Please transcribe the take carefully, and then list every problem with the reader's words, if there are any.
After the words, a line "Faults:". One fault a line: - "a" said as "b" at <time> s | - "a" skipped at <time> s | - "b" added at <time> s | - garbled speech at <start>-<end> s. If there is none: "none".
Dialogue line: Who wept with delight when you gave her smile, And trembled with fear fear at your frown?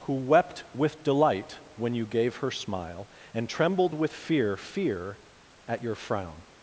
Who wept with delight when you gave her smile, And trembled with fear fear at your frown?
Faults:
none